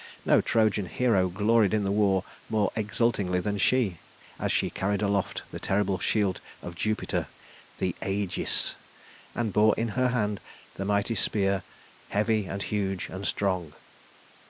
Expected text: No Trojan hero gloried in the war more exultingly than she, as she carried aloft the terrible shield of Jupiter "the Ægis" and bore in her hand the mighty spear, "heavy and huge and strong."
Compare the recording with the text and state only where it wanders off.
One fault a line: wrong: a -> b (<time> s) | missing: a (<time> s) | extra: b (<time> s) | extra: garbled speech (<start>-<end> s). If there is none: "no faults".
no faults